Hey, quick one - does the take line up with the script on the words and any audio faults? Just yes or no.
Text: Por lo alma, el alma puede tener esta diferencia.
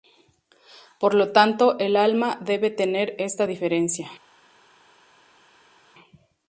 no